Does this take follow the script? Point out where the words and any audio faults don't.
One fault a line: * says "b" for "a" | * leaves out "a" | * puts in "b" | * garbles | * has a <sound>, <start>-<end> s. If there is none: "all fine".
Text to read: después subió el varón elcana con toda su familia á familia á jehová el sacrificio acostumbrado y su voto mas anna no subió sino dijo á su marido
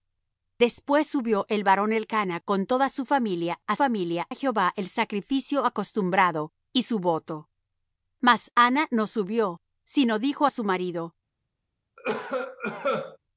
* has a cough, 12.0-13.2 s